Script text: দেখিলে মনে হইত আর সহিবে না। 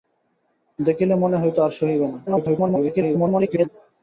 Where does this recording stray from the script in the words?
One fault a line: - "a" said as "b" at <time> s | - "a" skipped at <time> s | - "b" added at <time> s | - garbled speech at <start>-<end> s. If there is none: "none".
- garbled speech at 2.3-3.7 s